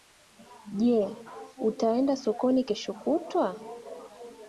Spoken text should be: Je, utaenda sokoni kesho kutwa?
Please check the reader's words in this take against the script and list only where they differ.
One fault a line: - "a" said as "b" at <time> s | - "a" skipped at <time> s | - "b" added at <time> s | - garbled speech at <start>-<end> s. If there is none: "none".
none